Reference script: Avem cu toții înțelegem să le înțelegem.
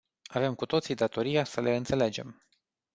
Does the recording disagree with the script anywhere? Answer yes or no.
yes